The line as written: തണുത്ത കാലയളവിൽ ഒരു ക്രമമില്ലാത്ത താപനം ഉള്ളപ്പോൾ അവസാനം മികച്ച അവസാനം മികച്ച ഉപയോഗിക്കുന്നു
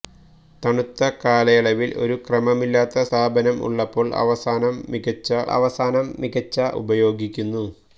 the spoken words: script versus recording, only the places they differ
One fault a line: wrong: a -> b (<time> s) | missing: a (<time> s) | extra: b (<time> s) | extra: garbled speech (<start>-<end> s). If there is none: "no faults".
no faults